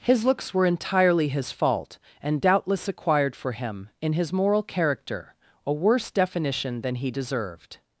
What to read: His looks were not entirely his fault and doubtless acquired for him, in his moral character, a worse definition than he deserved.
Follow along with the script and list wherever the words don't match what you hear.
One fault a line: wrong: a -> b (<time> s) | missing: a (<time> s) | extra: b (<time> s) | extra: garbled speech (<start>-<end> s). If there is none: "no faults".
missing: not (0.7 s)